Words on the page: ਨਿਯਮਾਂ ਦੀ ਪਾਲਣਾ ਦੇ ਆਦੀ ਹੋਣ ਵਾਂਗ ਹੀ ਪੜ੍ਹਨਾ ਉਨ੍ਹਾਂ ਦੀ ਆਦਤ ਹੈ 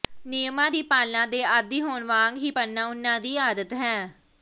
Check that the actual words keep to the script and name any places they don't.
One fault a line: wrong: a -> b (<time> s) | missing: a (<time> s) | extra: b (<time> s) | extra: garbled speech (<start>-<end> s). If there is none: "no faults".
no faults